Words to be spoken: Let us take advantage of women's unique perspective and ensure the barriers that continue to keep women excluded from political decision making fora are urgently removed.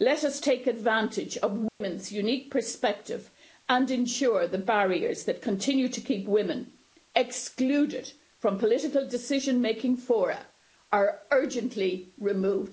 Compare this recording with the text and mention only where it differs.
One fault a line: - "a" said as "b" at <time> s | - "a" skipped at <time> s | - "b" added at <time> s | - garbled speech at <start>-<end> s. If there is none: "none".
none